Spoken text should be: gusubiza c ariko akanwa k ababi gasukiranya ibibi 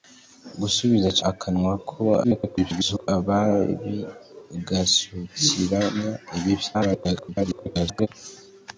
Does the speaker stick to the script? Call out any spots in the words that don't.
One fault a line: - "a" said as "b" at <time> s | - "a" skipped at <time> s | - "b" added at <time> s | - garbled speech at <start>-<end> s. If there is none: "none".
- "ariko" skipped at 1.2 s
- garbled speech at 2.2-3.1 s
- garbled speech at 6.7-8.1 s